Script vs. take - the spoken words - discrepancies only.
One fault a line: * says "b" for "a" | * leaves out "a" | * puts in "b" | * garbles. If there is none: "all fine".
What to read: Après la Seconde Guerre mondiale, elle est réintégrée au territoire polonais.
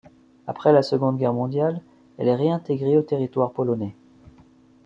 all fine